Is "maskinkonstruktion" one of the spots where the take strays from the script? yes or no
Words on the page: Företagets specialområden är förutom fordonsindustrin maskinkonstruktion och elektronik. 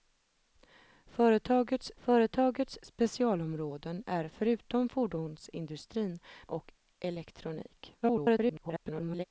yes